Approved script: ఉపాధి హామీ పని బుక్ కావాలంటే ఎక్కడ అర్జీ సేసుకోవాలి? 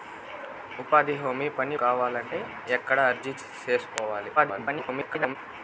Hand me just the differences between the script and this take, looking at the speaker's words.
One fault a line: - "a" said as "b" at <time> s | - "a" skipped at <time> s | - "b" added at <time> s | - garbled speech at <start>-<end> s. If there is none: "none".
- "బుక్" skipped at 1.8 s
- garbled speech at 4.4-5.4 s